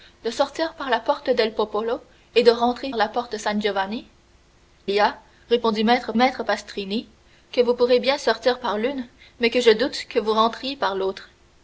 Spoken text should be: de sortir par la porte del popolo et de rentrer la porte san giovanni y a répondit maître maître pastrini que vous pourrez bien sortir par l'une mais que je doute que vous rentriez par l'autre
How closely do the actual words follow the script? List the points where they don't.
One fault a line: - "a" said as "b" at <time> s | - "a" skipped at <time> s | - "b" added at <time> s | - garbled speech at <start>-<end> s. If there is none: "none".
none